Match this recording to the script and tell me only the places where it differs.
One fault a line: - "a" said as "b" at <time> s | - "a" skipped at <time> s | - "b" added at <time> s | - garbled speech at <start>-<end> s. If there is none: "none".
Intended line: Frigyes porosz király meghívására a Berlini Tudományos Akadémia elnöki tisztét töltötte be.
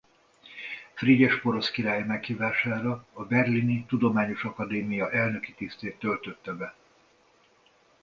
none